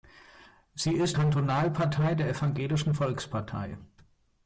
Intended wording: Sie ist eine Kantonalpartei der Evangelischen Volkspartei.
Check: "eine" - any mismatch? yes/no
yes